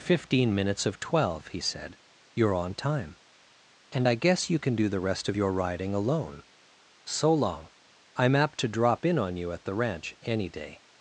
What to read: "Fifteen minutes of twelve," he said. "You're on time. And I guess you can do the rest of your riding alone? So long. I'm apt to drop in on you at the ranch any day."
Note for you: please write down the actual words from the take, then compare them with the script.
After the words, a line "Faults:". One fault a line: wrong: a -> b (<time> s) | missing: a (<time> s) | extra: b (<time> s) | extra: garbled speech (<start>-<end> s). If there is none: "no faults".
"Fifteen minutes of twelve," he said. "You're on time. And I guess you can do the rest of your riding alone? So long. I'm apt to drop in on you at the ranch any day."
Faults:
no faults